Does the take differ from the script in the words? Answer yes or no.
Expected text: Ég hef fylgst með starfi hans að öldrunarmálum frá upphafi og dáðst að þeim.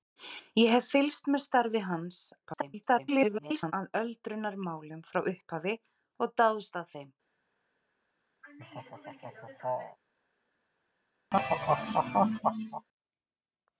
yes